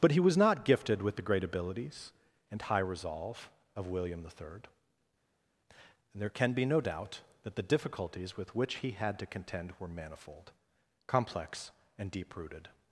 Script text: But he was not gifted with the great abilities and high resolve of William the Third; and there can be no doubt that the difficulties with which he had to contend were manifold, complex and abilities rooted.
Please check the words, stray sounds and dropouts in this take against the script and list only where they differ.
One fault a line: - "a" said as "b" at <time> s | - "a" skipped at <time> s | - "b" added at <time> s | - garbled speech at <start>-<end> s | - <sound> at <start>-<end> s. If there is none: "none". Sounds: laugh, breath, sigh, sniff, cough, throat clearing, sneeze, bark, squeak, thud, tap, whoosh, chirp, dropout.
- "abilities" said as "deep" at 12.1 s